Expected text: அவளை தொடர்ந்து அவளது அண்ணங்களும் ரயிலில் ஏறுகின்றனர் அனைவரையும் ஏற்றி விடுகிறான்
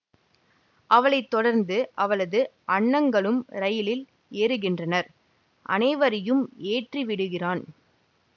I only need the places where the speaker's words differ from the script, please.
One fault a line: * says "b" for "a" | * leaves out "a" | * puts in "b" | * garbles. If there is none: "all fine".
all fine